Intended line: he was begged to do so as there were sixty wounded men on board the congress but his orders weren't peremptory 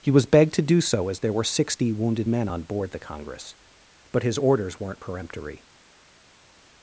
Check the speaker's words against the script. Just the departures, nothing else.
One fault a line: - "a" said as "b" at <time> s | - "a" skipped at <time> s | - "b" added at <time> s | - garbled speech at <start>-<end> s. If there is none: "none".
none